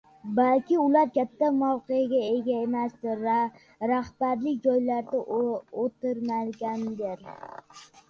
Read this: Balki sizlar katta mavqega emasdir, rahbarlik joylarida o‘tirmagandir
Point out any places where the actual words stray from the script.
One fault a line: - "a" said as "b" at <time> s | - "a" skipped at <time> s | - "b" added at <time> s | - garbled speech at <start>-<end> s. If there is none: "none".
- "sizlar" said as "ular" at 0.8 s
- "ega" added at 2.3 s